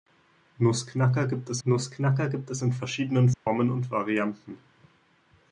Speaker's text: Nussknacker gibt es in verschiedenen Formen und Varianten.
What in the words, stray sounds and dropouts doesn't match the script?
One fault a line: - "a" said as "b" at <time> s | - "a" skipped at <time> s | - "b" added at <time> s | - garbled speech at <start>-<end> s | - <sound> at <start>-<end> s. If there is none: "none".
- "nussknacker gibt es" added at 1.6 s
- dropout at 3.3-3.5 s